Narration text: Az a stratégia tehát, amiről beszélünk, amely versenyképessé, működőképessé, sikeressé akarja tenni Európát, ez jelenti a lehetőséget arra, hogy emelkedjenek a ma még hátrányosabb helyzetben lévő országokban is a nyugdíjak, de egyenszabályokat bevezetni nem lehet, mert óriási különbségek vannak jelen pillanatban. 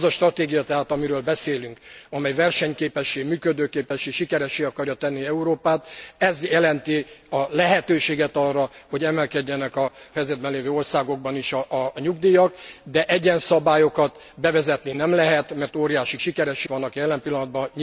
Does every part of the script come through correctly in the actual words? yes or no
no